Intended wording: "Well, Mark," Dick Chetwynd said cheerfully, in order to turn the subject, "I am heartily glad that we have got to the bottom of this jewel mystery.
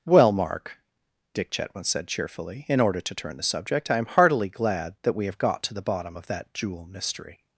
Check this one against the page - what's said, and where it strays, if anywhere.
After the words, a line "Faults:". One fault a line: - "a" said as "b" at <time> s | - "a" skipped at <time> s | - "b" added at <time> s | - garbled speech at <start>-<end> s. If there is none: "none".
"Well, Mark," Dick Chetwynd said cheerfully, in order to turn the subject, "I am heartily glad that we have got to the bottom of that jewel mystery.
Faults:
- "this" said as "that" at 6.3 s